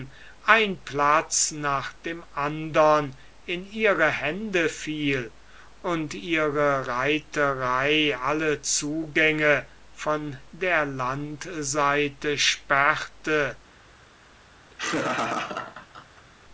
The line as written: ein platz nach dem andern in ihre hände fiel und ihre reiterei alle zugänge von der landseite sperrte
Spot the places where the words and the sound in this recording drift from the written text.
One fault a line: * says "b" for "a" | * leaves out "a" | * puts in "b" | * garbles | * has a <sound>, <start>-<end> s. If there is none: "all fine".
* has a laugh, 14.7-16.3 s